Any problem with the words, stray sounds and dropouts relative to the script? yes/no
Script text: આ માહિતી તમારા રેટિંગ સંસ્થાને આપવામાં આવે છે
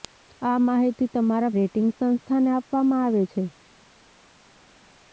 no